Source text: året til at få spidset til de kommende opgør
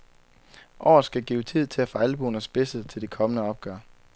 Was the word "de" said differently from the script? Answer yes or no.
no